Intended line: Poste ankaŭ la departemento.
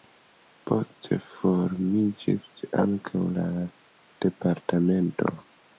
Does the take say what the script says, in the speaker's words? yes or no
no